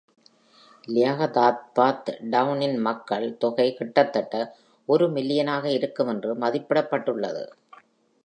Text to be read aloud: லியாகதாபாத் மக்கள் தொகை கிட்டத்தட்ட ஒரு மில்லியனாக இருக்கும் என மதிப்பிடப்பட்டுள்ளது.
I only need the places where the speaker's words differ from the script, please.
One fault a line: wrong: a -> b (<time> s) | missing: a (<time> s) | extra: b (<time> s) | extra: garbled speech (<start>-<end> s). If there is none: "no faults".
extra: டவுனின் (2.3 s)
wrong: என -> என்று (6.1 s)